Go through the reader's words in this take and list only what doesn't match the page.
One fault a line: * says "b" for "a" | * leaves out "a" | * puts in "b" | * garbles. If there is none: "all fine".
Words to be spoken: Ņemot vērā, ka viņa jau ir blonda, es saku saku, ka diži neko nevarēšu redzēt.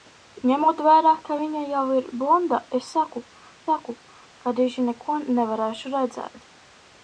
all fine